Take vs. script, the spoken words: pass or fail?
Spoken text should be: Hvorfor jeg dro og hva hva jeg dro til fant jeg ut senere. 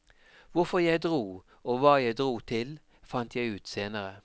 fail